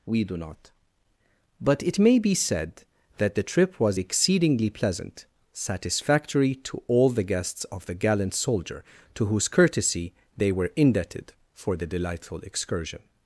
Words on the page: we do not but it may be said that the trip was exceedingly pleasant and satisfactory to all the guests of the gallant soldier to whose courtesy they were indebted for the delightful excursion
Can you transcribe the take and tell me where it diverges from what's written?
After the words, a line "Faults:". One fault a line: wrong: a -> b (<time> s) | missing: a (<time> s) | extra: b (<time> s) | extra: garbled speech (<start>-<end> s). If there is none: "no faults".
we do not but it may be said that the trip was exceedingly pleasant satisfactory to all the guests of the gallant soldier to whose courtesy they were indebted for the delightful excursion
Faults:
missing: and (5.2 s)